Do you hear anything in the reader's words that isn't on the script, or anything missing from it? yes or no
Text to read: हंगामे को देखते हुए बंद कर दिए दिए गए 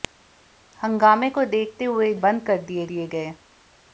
no